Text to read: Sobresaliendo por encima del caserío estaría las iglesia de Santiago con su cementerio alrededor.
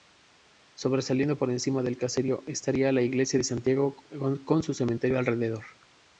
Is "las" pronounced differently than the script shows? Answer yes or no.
yes